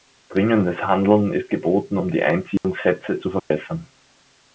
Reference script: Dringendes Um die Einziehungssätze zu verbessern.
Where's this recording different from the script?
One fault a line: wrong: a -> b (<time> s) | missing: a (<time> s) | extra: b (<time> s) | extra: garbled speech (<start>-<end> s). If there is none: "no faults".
extra: Handeln ist geboten (0.8 s)